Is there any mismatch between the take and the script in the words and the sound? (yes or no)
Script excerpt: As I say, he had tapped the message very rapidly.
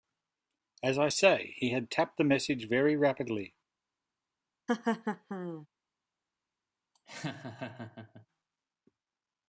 yes